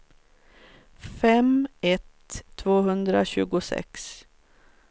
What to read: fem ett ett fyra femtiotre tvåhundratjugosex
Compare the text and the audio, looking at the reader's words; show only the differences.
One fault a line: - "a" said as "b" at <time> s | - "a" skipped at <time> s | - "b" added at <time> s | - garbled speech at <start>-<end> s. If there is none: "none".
- "ett fyra femtiotre" skipped at 2.4 s